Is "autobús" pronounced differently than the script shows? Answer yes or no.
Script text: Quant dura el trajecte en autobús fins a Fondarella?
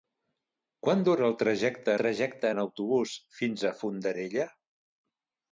no